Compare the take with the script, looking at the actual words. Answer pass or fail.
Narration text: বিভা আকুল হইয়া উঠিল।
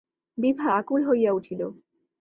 pass